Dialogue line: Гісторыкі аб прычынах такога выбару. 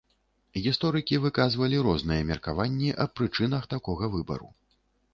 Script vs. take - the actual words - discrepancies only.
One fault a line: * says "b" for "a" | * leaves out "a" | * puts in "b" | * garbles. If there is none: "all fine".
* puts in "выказвалі розныя меркаванні"